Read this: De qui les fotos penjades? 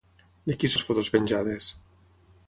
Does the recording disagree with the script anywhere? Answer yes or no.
no